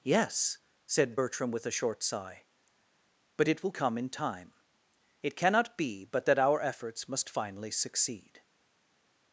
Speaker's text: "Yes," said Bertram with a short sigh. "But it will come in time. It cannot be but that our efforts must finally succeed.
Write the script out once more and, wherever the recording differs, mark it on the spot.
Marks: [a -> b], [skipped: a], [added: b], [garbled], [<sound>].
"Yes," said Bertram with a short sigh. "But it will come in time. It cannot be but that our efforts must finally succeed.